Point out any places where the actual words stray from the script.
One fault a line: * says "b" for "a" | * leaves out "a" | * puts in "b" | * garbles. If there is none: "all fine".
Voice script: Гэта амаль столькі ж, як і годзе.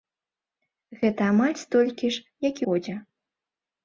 all fine